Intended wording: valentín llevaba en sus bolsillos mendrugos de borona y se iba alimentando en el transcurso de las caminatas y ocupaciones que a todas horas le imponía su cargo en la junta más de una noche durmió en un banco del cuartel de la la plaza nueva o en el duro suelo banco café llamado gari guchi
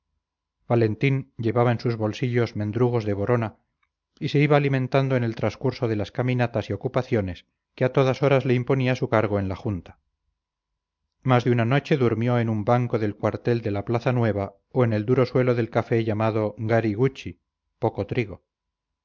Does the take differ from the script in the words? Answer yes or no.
yes